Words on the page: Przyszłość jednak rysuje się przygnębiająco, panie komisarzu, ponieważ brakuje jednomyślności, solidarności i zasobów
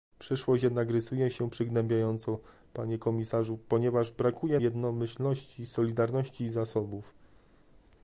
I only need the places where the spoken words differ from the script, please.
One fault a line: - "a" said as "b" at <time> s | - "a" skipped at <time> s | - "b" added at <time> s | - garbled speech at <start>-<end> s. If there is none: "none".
none